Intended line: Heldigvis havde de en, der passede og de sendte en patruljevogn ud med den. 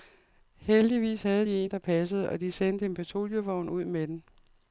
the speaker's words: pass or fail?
pass